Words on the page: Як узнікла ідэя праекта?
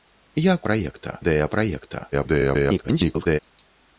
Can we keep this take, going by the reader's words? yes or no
no